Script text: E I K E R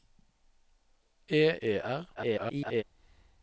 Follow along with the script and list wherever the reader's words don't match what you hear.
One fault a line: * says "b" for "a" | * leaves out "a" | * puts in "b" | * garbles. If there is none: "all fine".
* leaves out "I K"
* garbles